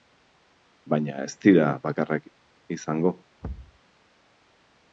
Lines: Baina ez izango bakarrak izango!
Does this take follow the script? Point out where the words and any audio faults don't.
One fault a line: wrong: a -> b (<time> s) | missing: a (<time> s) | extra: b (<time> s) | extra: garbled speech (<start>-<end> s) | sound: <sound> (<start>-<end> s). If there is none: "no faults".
wrong: izango -> dira (1.4 s)
sound: thud (3.4-3.8 s)